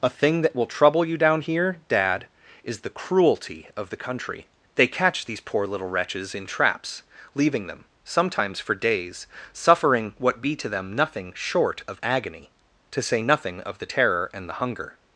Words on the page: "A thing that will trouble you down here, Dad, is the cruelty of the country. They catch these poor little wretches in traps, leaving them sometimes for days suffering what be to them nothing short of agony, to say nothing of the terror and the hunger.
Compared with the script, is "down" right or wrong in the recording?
right